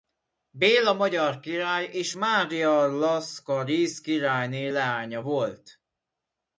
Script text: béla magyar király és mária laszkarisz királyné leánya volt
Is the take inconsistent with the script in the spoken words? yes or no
no